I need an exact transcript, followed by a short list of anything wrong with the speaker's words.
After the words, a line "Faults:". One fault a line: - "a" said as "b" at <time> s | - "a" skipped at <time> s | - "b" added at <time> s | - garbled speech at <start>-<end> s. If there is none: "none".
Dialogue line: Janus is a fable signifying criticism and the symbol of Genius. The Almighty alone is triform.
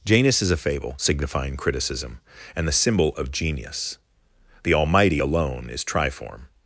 Janus is a fable signifying criticism and the symbol of Genius. The Almighty alone is triform.
Faults:
none